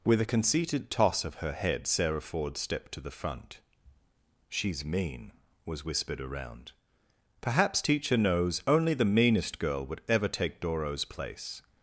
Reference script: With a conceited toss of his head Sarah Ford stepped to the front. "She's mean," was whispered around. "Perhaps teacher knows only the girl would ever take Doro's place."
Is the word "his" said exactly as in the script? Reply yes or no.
no